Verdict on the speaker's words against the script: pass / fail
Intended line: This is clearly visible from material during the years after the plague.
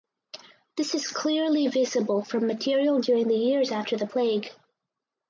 pass